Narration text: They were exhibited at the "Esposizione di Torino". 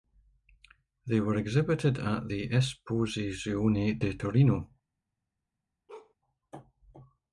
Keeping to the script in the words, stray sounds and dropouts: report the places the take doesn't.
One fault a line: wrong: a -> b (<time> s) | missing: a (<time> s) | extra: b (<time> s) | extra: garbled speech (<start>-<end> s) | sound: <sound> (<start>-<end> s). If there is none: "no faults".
sound: bark (5.9-6.1 s)